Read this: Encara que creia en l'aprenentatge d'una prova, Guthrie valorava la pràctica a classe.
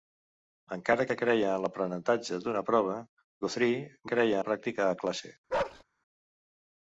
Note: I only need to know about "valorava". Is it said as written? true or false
false